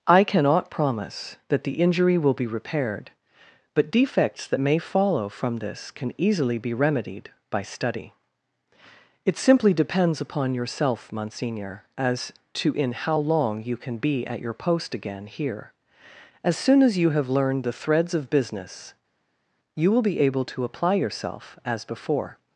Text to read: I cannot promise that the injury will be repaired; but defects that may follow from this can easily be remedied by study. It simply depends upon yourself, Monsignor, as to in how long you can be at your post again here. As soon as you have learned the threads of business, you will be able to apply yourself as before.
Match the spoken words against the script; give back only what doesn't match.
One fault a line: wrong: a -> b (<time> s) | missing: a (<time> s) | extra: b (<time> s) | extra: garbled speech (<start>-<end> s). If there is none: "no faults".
no faults